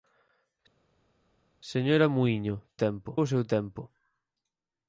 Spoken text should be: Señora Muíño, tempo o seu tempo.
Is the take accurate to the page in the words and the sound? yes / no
yes